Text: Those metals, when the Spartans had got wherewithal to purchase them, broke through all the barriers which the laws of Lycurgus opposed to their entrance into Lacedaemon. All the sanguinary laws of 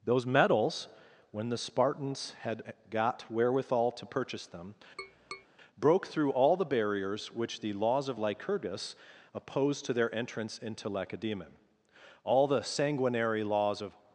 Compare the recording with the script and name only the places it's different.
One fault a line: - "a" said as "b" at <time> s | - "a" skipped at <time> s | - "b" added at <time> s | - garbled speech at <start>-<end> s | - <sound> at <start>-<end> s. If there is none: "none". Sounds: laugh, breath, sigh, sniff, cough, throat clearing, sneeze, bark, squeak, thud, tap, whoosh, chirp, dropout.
- tap at 5.0-5.5 s